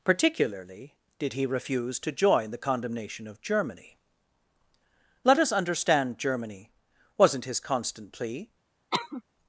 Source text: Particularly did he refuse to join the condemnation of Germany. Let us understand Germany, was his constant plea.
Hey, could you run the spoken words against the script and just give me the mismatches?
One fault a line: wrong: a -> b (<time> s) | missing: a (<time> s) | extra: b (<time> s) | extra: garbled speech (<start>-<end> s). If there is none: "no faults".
wrong: was -> wasn't (7.2 s)